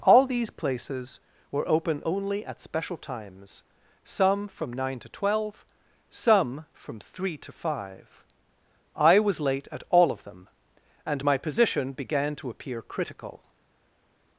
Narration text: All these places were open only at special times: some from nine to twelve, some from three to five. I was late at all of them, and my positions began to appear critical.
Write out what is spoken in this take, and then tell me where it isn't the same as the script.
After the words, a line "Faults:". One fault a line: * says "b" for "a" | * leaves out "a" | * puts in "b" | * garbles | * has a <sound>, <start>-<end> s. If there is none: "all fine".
All these places were open only at special times: some from nine to twelve, some from three to five. I was late at all of them, and my position began to appear critical.
Faults:
* says "position" for "positions"